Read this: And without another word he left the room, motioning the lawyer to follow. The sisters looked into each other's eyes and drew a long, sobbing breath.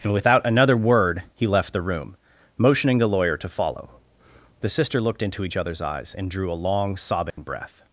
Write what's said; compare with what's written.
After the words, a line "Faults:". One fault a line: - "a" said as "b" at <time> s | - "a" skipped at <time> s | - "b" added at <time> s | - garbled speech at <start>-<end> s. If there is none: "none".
And without another word he left the room, motioning the lawyer to follow. The sister looked into each other's eyes and drew a long, sobbing breath.
Faults:
- "sisters" said as "sister" at 4.7 s